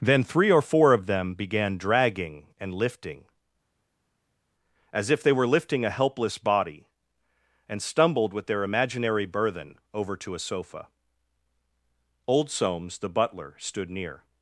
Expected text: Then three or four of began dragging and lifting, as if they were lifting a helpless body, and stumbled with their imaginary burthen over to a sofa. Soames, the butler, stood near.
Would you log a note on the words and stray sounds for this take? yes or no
yes